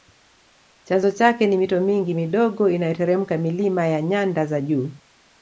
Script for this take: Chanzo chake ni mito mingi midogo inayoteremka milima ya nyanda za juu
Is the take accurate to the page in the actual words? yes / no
yes